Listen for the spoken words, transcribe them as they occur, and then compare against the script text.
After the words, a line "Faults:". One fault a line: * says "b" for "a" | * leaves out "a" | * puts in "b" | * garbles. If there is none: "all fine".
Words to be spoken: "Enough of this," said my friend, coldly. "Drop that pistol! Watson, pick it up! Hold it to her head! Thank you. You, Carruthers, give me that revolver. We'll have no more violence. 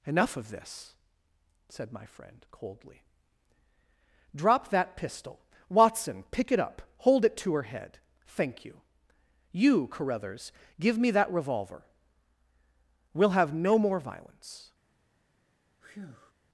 "Enough of this," said my friend, coldly. "Drop that pistol! Watson, pick it up! Hold it to her head! Thank you. You, Carruthers, give me that revolver. We'll have no more violence.
Faults:
all fine